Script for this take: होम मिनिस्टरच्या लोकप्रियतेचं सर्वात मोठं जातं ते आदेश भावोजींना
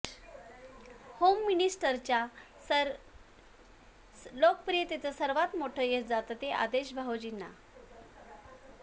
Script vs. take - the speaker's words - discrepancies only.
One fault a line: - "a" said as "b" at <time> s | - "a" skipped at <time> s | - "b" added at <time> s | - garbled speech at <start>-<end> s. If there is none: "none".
- "यश" added at 5.8 s